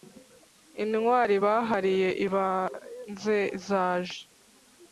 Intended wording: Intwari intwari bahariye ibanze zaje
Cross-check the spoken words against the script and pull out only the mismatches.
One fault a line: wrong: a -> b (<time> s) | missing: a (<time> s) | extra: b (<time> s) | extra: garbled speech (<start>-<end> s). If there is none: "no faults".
missing: intwari (1.4 s)